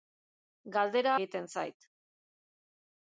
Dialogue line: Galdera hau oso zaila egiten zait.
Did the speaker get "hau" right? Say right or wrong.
wrong